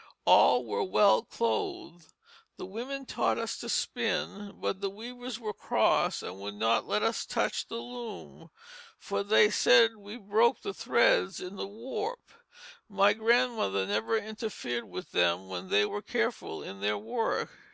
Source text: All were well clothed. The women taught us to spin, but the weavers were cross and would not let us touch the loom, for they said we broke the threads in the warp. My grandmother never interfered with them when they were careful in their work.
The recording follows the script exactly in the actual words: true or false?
true